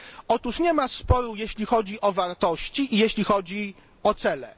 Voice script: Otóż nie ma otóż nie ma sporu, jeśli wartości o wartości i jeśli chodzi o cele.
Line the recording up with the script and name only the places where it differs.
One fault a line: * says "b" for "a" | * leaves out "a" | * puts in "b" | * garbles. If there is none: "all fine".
* leaves out "otóż nie ma"
* says "chodzi" for "wartości"